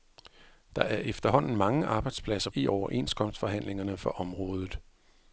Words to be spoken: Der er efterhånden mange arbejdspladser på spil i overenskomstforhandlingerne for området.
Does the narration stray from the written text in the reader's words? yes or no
yes